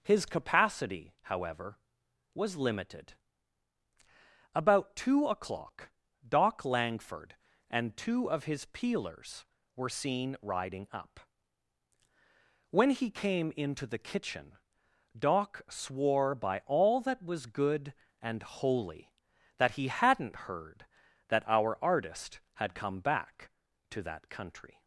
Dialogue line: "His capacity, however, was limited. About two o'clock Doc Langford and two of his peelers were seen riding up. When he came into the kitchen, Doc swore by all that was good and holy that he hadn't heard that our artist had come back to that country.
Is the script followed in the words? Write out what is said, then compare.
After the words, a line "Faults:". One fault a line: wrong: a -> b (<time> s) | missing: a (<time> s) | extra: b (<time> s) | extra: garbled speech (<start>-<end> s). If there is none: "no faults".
"His capacity, however, was limited. About two o'clock Doc Langford and two of his peelers were seen riding up. When he came into the kitchen, Doc swore by all that was good and holy that he hadn't heard that our artist had come back to that country.
Faults:
no faults